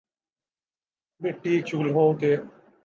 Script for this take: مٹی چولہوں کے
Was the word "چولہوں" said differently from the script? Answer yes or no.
no